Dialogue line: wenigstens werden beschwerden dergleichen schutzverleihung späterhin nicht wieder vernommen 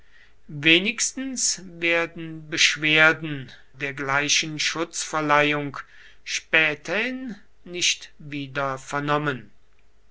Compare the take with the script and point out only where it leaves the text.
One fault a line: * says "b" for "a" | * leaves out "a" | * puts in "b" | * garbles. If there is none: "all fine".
all fine